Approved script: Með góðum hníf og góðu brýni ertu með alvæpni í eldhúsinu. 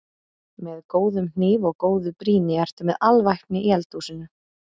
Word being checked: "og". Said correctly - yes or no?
yes